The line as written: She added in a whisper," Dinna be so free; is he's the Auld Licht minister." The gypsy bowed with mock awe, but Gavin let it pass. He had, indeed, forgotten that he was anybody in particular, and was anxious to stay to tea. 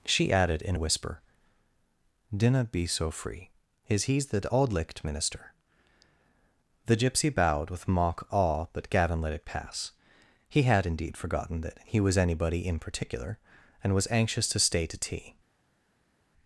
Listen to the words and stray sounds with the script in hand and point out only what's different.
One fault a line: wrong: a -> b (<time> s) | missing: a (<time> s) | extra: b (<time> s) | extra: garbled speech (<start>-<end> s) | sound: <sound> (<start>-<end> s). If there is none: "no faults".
no faults